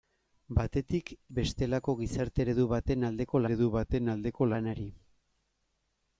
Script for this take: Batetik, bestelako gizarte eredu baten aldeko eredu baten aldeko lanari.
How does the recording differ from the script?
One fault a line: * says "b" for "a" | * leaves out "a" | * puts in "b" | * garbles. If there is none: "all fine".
all fine